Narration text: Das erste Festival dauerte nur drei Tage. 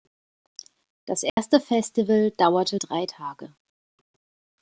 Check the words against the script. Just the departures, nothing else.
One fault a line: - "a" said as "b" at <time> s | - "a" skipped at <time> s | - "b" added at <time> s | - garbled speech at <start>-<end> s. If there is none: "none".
- "nur" skipped at 2.8 s